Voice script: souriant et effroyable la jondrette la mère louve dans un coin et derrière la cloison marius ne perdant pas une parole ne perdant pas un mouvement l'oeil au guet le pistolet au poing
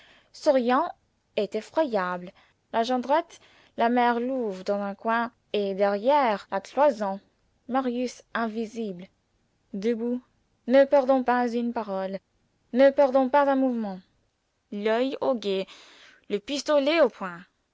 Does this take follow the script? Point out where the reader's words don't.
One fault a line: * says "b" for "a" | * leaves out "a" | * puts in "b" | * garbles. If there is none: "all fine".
* puts in "invisible debout"